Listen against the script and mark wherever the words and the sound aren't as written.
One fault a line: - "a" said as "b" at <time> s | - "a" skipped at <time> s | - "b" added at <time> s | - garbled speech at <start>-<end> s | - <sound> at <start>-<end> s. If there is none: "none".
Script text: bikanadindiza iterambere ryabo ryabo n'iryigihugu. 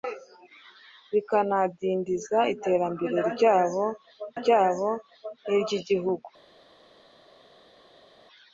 none